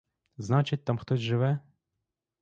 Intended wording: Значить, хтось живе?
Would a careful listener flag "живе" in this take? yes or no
no